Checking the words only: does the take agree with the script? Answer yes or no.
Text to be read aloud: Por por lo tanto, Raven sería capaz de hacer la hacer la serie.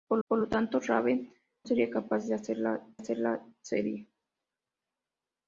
yes